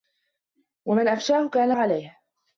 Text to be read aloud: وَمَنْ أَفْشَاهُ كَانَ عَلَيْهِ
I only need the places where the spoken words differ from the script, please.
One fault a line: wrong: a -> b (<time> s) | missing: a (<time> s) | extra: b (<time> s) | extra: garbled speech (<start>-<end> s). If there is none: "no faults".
no faults